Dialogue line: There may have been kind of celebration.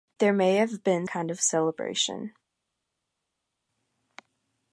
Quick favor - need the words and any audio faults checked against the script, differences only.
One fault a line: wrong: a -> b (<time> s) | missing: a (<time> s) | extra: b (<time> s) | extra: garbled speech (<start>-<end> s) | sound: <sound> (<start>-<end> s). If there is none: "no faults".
no faults